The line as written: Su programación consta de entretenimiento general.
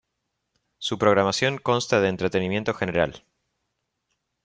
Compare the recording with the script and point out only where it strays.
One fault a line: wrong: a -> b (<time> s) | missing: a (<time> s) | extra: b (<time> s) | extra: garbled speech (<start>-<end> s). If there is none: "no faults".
no faults